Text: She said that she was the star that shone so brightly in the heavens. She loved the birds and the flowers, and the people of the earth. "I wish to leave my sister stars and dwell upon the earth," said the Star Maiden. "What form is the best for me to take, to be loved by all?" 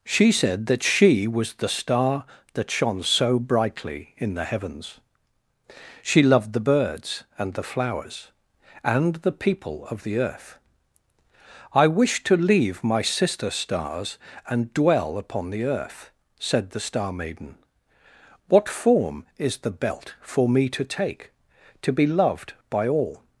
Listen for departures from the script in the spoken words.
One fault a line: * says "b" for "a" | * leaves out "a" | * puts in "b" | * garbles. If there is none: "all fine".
* says "belt" for "best"